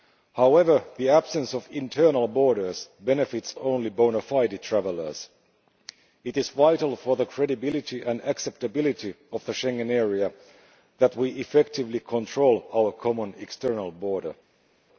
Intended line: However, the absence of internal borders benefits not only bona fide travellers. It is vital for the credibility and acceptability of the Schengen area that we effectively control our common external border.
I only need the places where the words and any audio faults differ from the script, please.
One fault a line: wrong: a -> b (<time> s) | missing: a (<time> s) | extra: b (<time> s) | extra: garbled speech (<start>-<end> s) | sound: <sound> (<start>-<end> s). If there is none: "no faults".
missing: not (3.5 s)